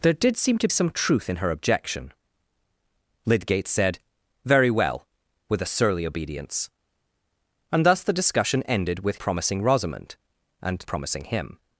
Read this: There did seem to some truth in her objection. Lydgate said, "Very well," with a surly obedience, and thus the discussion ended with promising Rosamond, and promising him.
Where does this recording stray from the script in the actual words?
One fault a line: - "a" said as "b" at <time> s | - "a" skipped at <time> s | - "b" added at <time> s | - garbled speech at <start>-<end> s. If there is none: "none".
none